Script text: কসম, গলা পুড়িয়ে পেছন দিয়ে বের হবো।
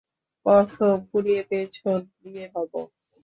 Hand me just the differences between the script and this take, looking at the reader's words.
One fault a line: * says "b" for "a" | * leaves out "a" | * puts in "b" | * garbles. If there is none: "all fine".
* leaves out "গলা"
* leaves out "বের"